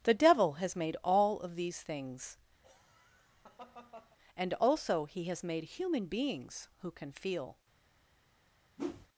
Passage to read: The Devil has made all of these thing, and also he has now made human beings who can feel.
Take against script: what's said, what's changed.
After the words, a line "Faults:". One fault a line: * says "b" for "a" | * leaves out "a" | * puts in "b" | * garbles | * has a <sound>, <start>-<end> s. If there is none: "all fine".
The Devil has made all of these things, and also he has made human beings who can feel.
Faults:
* says "things" for "thing"
* has a laugh, 2.6-4.2 s
* leaves out "now"
* has a whoosh, 8.8-9.1 s